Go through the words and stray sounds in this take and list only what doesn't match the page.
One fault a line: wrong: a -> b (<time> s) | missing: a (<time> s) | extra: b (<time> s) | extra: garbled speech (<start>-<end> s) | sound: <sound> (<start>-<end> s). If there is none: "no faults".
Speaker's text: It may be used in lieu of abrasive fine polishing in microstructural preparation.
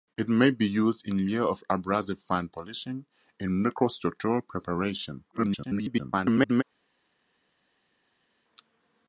extra: garbled speech (5.3-6.6 s)